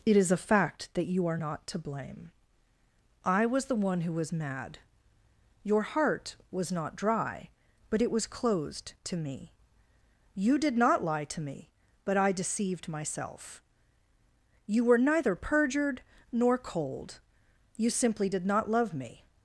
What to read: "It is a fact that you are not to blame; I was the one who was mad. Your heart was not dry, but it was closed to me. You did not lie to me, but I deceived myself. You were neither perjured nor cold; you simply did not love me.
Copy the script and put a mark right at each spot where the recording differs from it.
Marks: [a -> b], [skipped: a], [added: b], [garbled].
"It is a fact that you are not to blame; I was the one who was mad. Your heart was not dry, but it was closed to me. You did not lie to me, but I deceived myself. You were neither perjured nor cold; you simply did not love me.